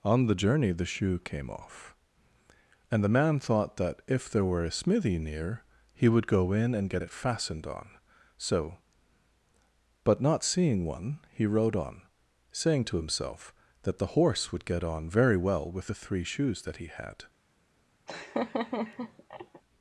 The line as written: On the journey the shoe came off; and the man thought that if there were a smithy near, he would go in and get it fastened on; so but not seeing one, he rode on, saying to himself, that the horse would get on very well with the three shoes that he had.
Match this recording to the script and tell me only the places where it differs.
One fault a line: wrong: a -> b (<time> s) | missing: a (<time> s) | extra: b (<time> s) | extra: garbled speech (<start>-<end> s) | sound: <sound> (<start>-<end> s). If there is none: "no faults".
sound: laugh (18.1-19.6 s)